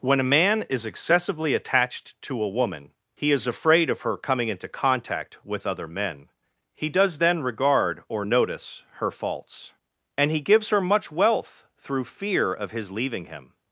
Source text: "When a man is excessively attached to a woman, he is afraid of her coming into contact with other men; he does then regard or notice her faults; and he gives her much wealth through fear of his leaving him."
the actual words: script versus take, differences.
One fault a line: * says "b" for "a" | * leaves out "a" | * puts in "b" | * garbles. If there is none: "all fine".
all fine